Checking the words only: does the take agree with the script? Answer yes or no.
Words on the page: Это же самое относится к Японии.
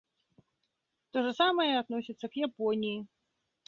no